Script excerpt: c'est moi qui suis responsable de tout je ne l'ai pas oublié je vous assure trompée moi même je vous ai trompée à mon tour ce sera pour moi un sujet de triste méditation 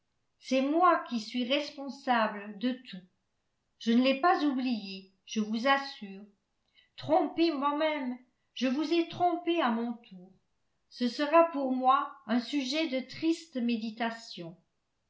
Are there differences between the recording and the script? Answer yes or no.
no